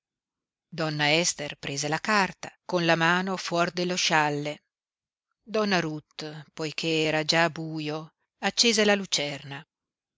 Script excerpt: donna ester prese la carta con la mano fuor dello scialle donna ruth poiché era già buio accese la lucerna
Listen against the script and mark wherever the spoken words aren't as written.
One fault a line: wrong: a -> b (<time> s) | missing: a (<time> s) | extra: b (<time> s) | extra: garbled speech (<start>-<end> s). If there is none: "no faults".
no faults